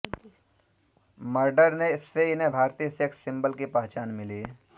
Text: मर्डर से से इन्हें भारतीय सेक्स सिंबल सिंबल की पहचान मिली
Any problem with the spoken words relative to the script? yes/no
yes